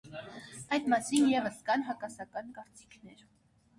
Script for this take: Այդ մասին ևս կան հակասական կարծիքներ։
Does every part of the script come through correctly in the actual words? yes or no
yes